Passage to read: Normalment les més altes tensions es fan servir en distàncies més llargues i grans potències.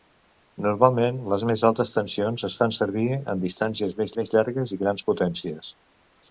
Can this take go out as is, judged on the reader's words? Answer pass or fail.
fail